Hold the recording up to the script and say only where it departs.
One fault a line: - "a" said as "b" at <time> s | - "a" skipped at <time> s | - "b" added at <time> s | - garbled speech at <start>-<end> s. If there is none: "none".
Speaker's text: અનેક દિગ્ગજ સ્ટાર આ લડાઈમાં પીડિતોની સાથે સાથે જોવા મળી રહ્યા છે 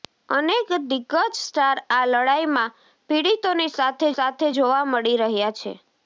none